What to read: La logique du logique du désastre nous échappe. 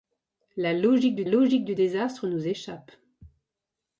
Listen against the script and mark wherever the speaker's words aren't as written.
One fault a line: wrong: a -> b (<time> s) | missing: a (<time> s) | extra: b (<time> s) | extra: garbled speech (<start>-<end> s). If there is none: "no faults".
no faults